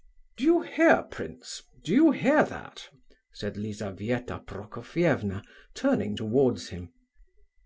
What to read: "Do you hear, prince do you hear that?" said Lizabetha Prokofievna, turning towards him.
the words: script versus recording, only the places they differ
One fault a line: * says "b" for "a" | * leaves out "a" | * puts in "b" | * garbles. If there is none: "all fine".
all fine